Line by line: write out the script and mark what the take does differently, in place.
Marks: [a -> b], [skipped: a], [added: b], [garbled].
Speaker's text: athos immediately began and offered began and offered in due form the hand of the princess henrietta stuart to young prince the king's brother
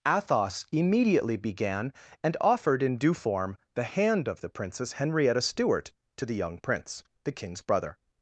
athos immediately began and offered [skipped: began and offered] in due form the hand of the princess henrietta stuart to [added: the] young prince the king's brother